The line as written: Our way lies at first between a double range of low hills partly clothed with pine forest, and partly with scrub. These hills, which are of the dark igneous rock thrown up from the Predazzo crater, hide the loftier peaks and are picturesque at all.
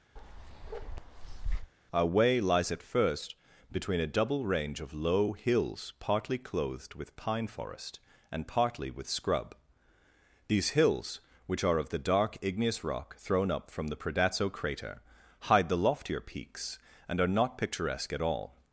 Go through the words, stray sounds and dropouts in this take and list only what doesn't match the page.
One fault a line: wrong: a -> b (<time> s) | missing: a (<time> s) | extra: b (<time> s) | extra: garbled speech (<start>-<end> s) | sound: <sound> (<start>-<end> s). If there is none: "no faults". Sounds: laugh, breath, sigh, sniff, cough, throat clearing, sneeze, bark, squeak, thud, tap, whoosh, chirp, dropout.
sound: bark (0.2-1.7 s)
extra: not (17.3 s)